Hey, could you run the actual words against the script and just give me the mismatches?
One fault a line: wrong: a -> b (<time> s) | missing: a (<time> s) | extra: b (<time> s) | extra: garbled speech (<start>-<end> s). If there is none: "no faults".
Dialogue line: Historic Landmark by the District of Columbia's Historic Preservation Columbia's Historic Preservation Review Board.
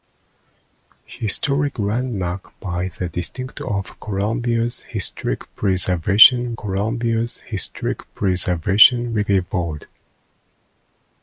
no faults